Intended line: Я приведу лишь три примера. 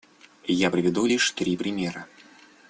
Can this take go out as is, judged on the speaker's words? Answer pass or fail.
pass